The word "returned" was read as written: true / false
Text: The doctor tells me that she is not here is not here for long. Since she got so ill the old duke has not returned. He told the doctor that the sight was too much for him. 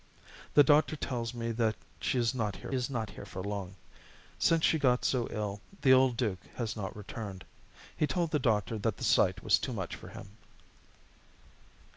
true